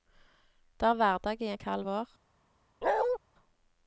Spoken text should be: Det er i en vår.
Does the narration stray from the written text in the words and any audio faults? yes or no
yes